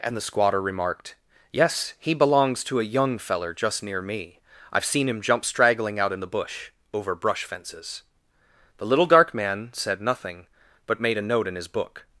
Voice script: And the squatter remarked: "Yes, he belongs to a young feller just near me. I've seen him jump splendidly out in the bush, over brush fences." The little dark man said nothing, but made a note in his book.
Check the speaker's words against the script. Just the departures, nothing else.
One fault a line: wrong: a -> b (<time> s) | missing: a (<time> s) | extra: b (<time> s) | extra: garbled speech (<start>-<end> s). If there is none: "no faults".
wrong: splendidly -> straggling (5.5 s)